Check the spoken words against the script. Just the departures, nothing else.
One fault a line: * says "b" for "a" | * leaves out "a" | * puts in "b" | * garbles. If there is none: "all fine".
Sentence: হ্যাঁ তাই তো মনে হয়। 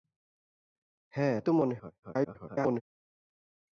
* leaves out "তাই"
* garbles